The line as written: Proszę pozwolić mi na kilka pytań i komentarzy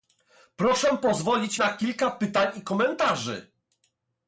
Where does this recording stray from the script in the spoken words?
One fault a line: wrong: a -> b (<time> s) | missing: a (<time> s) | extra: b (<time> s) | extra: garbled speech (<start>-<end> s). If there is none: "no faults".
missing: mi (1.6 s)